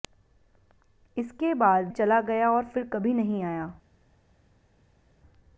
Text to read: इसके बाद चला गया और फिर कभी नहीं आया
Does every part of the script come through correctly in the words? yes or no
yes